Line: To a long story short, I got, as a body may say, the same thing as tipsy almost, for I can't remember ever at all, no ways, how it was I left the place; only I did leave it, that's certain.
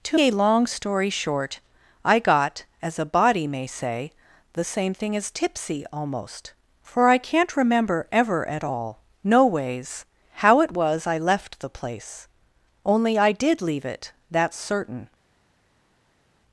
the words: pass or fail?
pass